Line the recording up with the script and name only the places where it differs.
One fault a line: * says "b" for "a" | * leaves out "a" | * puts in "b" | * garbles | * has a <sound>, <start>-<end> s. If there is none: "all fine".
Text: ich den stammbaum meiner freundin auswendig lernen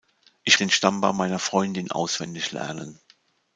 all fine